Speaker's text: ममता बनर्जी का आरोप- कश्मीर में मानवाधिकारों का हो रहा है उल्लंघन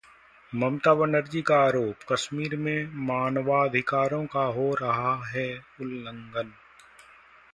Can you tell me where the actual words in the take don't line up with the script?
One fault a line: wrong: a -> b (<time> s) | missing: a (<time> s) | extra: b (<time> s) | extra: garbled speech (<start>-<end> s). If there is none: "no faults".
no faults